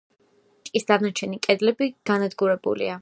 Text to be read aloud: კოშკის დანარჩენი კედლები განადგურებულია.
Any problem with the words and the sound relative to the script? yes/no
no